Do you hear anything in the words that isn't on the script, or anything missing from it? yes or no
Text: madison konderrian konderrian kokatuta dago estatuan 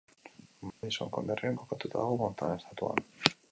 yes